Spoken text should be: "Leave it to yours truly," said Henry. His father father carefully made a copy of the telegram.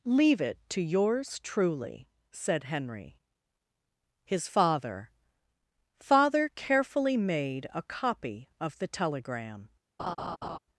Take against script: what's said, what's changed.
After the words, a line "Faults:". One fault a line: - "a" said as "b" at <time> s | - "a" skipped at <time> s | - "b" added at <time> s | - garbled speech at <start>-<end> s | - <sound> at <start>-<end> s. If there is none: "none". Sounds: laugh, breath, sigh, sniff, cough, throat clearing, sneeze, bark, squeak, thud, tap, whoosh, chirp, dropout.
"Leave it to yours truly," said Henry. His father father carefully made a copy of the telegram.
Faults:
- laugh at 10.0-10.6 s